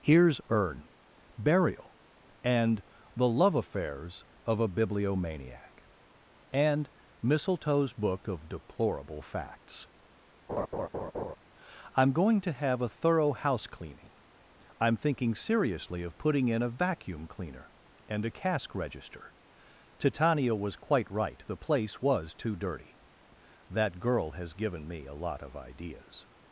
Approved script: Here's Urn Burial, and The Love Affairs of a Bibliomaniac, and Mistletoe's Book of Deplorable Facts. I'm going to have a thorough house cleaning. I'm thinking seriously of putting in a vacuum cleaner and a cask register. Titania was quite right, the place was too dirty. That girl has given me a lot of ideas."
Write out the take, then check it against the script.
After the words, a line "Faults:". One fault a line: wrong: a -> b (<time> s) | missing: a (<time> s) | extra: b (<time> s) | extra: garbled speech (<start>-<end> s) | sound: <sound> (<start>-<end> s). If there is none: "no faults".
Here's Urn Burial, and The Love Affairs of a Bibliomaniac, and Mistletoe's Book of Deplorable Facts. I'm going to have a thorough house cleaning. I'm thinking seriously of putting in a vacuum cleaner and a cask register. Titania was quite right, the place was too dirty. That girl has given me a lot of ideas."
Faults:
sound: laugh (10.5-11.4 s)